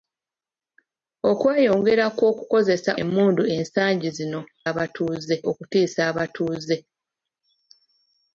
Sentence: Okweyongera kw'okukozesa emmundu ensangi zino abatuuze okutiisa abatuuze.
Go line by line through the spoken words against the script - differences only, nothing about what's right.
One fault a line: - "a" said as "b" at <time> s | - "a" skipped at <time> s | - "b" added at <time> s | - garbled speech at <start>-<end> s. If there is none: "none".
none